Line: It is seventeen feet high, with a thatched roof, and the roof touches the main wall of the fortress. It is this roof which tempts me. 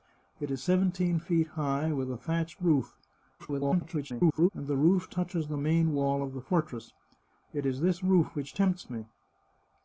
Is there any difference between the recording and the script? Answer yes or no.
yes